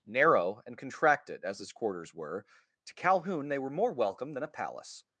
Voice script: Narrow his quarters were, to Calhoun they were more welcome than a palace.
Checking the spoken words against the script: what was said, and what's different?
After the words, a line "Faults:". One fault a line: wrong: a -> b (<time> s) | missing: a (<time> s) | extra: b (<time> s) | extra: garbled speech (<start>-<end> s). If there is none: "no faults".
Narrow and contracted as his quarters were, to Calhoun they were more welcome than a palace.
Faults:
extra: and contracted as (0.7 s)